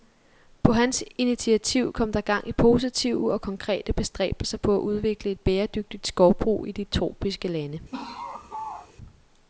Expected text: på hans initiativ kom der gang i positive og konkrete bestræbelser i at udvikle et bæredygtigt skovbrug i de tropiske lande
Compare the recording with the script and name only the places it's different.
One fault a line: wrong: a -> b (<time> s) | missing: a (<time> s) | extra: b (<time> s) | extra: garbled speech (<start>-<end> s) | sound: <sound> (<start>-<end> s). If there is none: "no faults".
wrong: i -> på (4.6 s)
sound: laugh (7.9-8.9 s)